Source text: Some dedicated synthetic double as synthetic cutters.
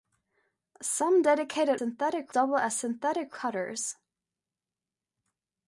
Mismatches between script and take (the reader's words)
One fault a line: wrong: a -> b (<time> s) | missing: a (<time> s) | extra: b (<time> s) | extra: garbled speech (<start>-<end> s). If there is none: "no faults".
no faults